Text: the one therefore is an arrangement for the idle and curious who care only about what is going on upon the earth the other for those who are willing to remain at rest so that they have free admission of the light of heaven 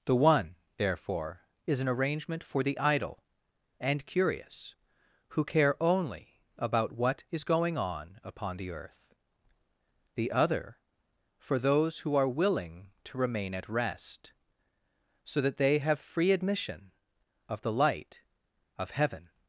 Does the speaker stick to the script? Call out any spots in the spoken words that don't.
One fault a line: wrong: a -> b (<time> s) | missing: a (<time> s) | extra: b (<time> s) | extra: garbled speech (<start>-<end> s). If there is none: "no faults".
no faults